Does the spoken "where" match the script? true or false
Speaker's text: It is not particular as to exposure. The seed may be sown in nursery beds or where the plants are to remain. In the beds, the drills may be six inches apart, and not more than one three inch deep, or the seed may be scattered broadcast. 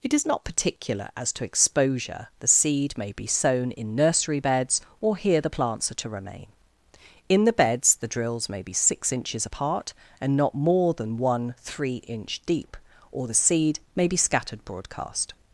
false